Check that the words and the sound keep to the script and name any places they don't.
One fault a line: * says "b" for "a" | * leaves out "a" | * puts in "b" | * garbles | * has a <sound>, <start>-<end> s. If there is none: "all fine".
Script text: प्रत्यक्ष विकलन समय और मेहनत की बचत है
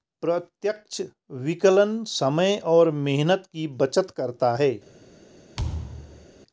* puts in "करता"
* has a thud, 5.6-6.3 s